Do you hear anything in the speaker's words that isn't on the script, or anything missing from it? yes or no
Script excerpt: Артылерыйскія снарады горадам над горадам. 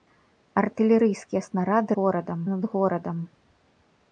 no